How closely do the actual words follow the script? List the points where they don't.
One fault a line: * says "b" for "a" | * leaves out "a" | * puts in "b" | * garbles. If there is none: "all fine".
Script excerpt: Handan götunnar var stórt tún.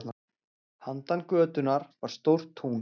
all fine